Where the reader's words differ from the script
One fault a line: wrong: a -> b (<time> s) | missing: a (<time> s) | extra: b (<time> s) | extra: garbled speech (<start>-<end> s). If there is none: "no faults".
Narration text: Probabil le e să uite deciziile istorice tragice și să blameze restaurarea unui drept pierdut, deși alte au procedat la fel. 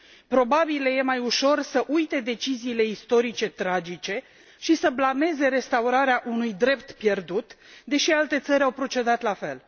extra: mai ușor (1.0 s)
extra: țări (8.4 s)